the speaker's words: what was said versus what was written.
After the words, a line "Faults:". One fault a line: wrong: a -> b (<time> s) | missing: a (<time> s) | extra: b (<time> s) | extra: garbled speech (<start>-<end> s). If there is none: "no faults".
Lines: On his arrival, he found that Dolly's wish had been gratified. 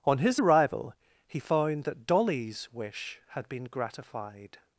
On his arrival, he found that Dolly's wish had been gratified.
Faults:
no faults